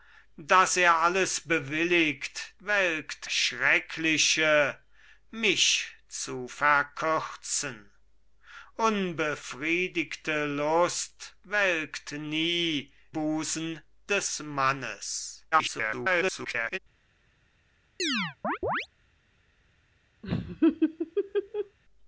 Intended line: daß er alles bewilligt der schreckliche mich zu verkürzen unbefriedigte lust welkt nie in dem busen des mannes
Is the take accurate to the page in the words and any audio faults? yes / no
no